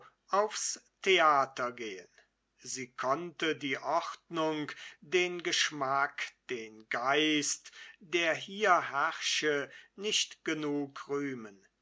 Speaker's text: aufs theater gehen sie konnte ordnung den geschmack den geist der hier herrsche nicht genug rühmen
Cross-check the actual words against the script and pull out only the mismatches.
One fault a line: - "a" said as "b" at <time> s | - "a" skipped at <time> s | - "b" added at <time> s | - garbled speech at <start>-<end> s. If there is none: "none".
- "die" added at 3.5 s